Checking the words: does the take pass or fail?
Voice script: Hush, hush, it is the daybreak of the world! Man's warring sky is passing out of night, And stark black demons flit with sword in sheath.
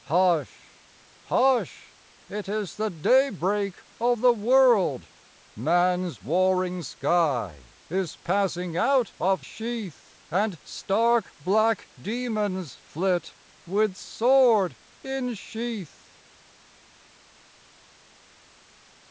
fail